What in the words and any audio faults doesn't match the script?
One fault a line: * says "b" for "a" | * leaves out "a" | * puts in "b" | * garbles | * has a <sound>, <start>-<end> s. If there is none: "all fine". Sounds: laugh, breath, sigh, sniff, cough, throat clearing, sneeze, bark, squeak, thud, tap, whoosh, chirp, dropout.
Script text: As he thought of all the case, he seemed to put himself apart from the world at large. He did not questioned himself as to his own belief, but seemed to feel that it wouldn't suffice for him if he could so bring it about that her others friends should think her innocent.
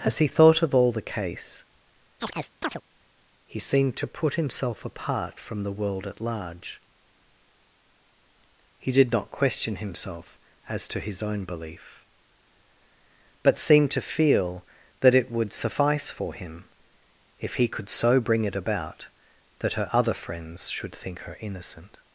* has a chirp, 2.2-2.8 s
* says "question" for "questioned"
* says "would" for "wouldn't"
* says "other" for "others"